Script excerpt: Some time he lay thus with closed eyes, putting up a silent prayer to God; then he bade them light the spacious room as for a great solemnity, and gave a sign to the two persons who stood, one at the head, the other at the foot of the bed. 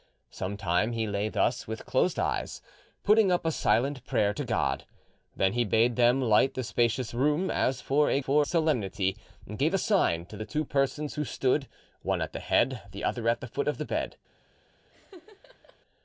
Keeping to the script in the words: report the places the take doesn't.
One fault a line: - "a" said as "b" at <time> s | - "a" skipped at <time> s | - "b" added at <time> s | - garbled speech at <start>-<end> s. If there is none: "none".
- "great" said as "for" at 8.2 s